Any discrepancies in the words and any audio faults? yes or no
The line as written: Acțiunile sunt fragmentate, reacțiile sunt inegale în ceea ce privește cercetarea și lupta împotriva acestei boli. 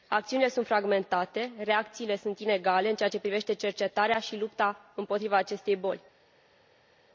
no